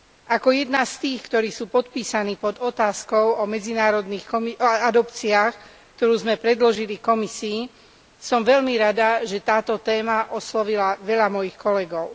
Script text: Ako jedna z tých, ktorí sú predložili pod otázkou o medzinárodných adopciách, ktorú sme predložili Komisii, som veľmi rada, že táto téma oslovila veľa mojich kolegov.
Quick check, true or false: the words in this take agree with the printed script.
false